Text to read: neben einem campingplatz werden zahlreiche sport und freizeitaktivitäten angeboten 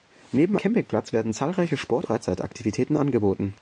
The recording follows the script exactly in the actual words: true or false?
false